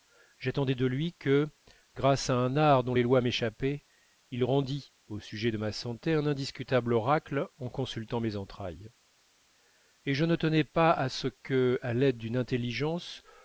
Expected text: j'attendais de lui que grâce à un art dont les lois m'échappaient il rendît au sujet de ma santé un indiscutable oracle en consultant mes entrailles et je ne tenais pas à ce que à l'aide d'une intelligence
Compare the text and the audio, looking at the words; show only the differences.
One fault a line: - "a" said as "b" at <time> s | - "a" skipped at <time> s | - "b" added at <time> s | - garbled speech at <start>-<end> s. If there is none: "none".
none